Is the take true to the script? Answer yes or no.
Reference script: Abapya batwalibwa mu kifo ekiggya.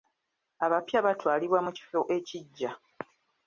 yes